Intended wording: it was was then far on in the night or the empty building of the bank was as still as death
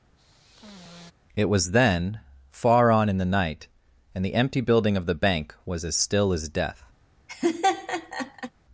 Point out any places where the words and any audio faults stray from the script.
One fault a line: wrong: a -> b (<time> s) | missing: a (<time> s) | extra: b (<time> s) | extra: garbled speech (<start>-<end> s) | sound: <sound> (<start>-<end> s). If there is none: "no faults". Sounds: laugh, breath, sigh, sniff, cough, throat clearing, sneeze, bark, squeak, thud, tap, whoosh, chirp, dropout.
sound: sigh (0.2-1.1 s)
missing: was (1.7 s)
wrong: or -> and (4.1 s)
sound: laugh (7.3-8.5 s)